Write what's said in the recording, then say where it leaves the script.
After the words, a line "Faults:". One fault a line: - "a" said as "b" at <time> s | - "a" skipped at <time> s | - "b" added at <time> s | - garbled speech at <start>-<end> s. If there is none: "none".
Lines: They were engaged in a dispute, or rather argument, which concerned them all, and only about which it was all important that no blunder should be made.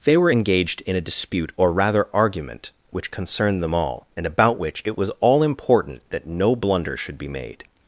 They were engaged in a dispute, or rather argument, which concerned them all, and about which it was all important that no blunder should be made.
Faults:
- "only" skipped at 4.2 s